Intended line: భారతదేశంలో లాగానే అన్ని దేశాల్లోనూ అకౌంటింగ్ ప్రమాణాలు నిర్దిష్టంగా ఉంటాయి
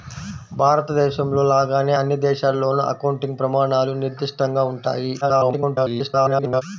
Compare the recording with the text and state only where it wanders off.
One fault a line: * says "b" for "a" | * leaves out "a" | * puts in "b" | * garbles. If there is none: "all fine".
* garbles